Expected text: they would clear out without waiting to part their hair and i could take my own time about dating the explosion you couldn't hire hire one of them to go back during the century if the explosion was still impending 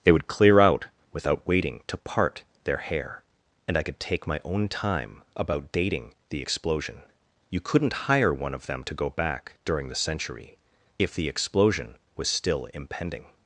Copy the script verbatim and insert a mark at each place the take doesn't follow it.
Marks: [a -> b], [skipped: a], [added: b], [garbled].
they would clear out without waiting to part their hair and i could take my own time about dating the explosion you couldn't hire [skipped: hire] one of them to go back during the century if the explosion was still impending